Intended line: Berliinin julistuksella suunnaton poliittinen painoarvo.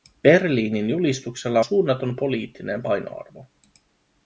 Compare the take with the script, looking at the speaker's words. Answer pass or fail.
pass